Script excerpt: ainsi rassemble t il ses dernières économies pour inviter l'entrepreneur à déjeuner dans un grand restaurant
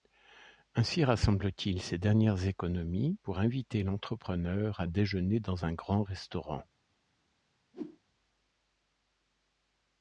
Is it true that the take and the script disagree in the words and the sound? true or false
true